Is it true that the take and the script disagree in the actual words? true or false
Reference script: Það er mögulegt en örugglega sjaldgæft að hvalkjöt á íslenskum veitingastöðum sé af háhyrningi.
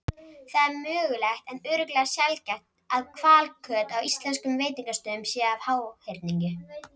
false